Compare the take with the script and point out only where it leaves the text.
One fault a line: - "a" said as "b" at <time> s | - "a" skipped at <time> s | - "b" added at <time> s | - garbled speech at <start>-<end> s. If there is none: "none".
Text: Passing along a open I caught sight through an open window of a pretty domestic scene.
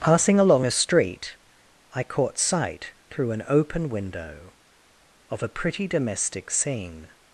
- "open" said as "street" at 0.7 s